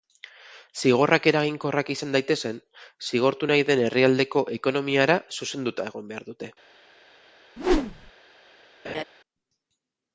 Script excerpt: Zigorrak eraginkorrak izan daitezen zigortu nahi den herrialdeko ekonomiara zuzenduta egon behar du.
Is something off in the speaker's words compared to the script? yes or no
yes